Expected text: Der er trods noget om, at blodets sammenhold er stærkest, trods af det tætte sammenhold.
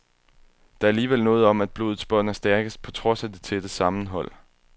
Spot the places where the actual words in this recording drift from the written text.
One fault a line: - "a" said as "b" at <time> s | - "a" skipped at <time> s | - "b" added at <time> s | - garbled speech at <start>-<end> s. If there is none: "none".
- "trods" said as "alligevel" at 0.9 s
- "sammenhold" said as "bånd" at 2.0 s
- "på" added at 2.8 s